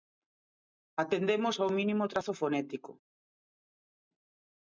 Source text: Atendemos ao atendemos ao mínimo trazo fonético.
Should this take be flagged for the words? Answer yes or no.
yes